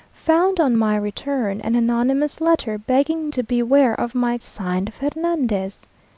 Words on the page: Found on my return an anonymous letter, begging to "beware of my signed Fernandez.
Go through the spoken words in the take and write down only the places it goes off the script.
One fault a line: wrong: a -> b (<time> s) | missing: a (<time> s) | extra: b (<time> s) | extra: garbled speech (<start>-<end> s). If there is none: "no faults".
no faults